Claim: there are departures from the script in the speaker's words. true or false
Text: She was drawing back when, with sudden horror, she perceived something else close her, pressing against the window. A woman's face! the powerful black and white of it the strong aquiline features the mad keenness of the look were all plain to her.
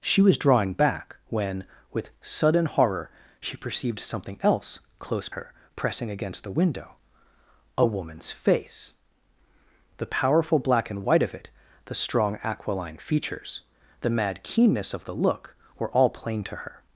false